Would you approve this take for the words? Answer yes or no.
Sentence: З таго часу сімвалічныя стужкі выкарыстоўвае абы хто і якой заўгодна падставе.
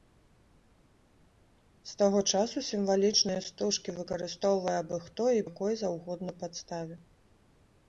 yes